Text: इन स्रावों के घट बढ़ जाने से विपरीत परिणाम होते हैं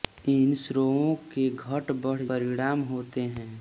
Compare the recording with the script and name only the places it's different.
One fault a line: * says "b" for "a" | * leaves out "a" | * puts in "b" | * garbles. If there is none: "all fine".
* leaves out "जाने से विपरीत"